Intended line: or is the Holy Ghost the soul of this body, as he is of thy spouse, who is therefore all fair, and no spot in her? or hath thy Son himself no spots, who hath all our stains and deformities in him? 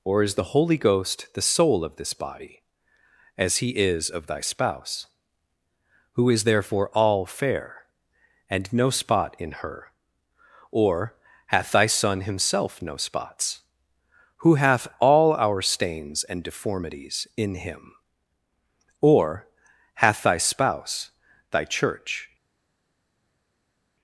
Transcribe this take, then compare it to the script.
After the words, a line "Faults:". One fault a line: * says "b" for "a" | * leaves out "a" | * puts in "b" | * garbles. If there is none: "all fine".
or is the Holy Ghost the soul of this body, as he is of thy spouse, who is therefore all fair, and no spot in her? or hath thy Son himself no spots, who hath all our stains and deformities in him? or hath thy spouse, thy church
Faults:
* puts in "or hath thy spouse thy church"